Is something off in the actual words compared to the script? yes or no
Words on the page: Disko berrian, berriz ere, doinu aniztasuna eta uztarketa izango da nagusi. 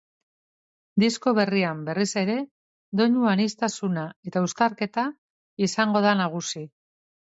no